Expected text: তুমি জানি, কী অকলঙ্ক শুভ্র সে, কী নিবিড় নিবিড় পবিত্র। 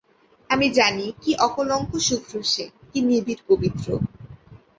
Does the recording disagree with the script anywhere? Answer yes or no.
yes